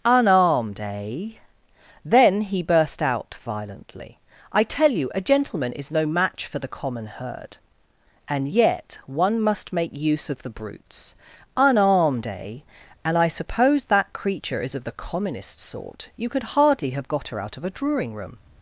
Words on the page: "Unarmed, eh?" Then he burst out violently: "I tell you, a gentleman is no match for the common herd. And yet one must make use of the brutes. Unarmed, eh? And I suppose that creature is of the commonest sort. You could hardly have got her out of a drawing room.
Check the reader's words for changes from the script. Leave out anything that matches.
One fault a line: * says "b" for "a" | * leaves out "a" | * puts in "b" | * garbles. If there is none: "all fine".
all fine